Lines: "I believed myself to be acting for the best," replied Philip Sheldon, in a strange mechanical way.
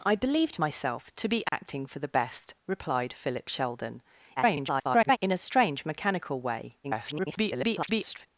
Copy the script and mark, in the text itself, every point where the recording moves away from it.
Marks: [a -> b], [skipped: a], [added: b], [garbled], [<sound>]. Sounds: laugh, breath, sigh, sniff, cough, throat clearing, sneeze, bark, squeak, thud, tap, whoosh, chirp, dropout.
"I believed myself to be acting [dropout] for the best," replied Philip Sheldon, [garbled] in a strange mechanical way. [garbled]